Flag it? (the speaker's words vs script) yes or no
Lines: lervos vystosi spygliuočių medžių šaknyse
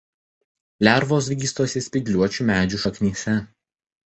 no